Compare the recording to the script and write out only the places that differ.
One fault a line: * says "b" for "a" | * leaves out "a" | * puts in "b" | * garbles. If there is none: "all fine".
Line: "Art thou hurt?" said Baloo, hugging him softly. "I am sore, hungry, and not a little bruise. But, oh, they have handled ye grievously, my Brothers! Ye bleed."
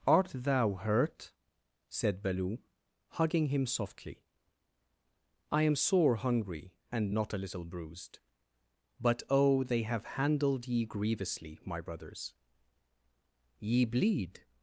* says "bruised" for "bruise"